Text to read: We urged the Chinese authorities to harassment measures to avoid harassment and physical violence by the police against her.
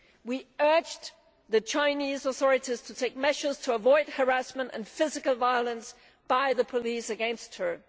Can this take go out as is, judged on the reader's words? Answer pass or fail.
fail